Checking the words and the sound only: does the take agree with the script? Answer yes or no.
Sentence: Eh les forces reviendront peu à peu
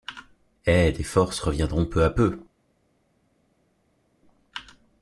yes